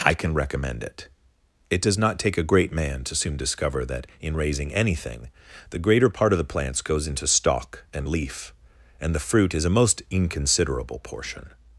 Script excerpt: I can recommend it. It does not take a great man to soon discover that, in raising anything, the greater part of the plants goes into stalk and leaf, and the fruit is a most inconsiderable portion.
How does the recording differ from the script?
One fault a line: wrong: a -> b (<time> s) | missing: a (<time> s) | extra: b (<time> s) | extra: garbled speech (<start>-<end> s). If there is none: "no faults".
no faults